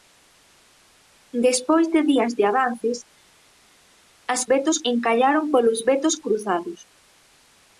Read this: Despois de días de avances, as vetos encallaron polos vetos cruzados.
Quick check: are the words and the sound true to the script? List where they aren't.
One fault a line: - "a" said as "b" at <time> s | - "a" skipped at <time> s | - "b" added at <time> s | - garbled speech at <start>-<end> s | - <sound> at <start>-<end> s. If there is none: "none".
none